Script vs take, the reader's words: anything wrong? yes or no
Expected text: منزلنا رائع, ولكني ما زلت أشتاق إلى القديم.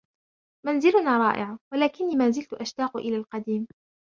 no